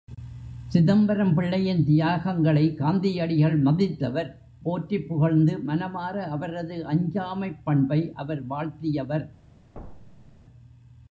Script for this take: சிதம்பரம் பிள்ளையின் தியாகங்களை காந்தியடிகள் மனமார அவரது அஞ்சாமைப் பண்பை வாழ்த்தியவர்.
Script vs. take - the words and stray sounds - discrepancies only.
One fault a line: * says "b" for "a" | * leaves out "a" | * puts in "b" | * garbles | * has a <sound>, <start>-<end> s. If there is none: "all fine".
* puts in "மதித்தவர் போற்றிப் புகழ்ந்து"
* puts in "அவர்"
* has a thud, 9.7-10.4 s